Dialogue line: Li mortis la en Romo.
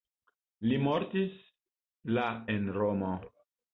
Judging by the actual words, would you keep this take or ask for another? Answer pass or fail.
pass